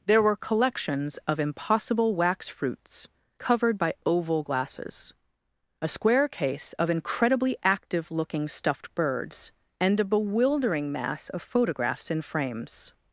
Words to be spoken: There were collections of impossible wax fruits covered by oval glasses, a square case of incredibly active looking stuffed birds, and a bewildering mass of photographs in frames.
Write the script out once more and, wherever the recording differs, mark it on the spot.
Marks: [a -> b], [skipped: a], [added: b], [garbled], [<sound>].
There were collections of impossible wax fruits covered by oval glasses, a square case of incredibly active looking stuffed birds, and a bewildering mass of photographs in frames.